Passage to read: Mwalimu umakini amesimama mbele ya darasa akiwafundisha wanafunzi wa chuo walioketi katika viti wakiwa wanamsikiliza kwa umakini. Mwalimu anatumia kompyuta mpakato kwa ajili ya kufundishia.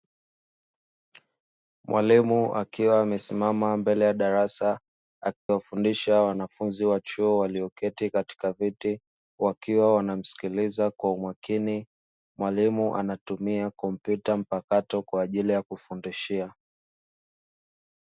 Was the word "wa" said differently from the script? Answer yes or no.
no